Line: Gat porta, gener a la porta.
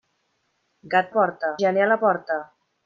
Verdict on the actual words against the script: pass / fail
pass